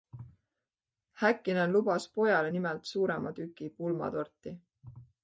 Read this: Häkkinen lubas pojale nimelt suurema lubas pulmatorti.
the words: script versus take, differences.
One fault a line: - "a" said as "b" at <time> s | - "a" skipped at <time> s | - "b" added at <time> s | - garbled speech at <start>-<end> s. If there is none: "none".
- "lubas" said as "tüki" at 3.4 s